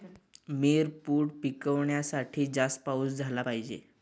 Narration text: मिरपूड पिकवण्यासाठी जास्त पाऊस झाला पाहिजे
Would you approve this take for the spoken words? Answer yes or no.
yes